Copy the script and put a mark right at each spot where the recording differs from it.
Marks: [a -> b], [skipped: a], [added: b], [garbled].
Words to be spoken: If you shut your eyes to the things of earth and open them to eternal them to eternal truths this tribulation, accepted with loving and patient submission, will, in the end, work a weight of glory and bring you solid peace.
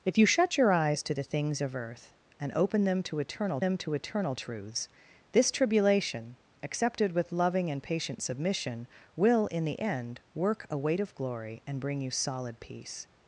If you shut your eyes to the things of earth and open them to eternal them to eternal truths this tribulation, accepted with loving and patient submission, will, in the end, work a weight of glory and bring you solid peace.